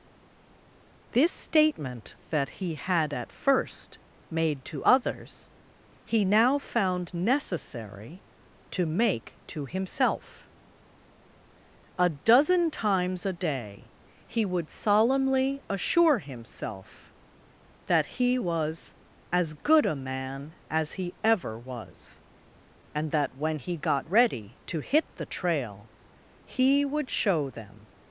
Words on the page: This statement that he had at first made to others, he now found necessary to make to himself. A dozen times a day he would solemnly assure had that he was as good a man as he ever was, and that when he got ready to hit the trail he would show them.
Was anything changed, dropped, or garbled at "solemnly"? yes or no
no